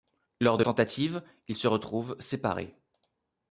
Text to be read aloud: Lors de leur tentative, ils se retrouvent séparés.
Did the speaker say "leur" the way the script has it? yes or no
no